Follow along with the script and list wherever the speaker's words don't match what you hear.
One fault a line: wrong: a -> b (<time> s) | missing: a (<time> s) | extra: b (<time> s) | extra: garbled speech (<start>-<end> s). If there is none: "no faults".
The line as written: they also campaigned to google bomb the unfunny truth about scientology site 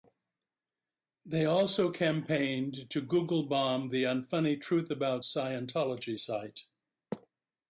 no faults